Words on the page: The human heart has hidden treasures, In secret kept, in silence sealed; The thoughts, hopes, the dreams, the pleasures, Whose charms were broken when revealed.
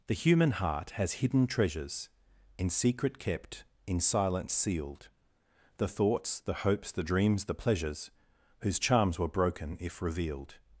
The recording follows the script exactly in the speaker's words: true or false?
false